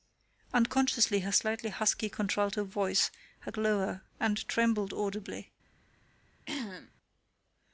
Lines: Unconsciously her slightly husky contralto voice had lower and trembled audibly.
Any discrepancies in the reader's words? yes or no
no